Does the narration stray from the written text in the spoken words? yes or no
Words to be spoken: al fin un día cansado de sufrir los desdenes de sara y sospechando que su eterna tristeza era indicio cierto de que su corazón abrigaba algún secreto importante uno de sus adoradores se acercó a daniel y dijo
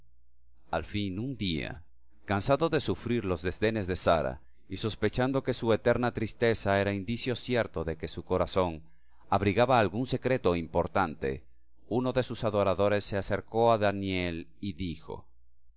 no